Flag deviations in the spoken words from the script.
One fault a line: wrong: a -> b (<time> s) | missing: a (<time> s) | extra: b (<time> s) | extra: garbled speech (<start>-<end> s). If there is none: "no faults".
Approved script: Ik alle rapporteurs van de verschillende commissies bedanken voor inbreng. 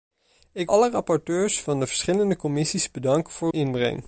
no faults